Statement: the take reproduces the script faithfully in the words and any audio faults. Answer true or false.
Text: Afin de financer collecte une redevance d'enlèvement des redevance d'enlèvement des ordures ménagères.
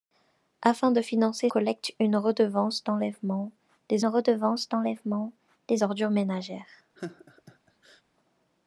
false